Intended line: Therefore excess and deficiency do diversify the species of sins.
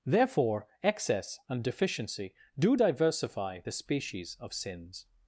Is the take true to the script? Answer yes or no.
yes